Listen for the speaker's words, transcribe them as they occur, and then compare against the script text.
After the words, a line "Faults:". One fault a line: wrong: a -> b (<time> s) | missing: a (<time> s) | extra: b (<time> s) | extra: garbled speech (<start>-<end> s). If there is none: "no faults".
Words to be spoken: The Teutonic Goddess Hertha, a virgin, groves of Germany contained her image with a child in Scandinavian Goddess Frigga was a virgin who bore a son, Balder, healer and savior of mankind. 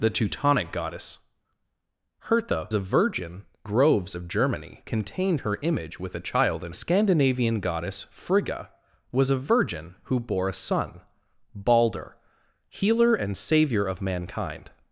The Teutonic Goddess Hertha, a virgin, groves of Germany contained her image with a child in Scandinavian Goddess Frigga was a virgin who bore a son, Balder, healer and savior of mankind.
Faults:
no faults